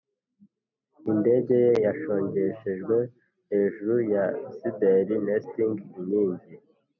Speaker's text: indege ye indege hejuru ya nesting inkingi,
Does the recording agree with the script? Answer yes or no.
no